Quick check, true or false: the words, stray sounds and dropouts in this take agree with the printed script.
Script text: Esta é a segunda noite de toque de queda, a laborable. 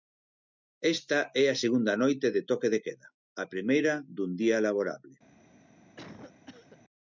false